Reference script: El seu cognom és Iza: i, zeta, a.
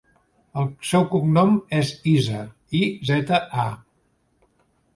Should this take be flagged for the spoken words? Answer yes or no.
no